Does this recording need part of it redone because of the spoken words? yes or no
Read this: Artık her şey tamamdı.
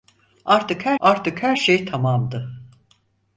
yes